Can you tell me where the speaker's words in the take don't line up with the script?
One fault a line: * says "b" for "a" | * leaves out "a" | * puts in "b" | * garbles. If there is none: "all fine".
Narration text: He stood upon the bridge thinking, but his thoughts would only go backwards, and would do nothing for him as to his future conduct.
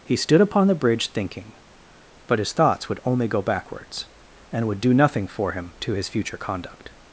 * leaves out "as"